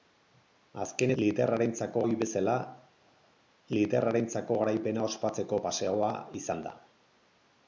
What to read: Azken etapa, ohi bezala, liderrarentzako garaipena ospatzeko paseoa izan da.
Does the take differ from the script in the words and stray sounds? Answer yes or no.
yes